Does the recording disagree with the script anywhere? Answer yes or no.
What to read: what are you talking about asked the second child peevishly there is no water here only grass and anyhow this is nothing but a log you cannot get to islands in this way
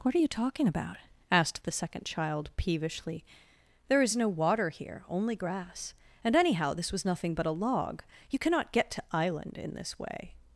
yes